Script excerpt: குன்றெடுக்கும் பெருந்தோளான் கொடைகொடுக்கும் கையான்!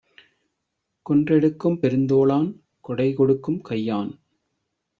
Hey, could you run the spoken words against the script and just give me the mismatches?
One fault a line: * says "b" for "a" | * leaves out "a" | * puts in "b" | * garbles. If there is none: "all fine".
all fine